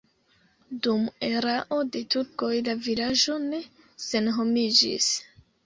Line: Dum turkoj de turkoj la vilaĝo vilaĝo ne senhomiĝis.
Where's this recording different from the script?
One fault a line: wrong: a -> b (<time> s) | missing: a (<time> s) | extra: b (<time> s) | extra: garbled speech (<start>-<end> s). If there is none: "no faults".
wrong: turkoj -> erao (1.3 s)
missing: vilaĝo (3.4 s)